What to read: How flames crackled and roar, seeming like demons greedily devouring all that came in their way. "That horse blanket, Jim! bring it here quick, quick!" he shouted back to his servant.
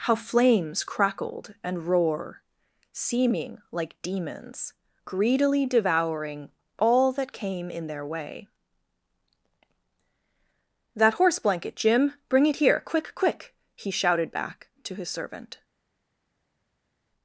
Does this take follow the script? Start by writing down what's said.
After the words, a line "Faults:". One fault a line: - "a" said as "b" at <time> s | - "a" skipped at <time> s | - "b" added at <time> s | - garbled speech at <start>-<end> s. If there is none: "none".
How flames crackled and roar, seeming like demons greedily devouring all that came in their way. "That horse blanket, Jim! bring it here quick, quick!" he shouted back to his servant.
Faults:
none